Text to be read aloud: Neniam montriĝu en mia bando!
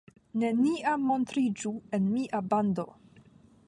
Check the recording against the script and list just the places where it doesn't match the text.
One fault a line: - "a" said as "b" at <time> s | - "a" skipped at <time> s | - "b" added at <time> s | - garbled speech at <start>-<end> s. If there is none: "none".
none